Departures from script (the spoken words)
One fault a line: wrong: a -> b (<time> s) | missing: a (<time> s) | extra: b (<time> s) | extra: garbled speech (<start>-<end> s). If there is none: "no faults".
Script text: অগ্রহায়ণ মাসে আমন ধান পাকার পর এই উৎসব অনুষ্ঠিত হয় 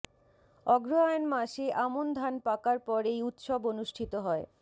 no faults